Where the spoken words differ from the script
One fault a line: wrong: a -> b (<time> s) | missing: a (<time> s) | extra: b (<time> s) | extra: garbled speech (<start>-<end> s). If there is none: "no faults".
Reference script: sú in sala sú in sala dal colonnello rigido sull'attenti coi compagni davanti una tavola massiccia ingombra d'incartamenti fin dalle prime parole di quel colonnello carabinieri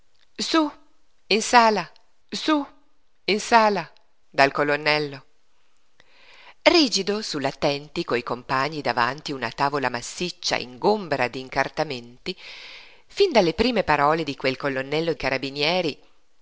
no faults